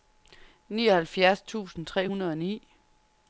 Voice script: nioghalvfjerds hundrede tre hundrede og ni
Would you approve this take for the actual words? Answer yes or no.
no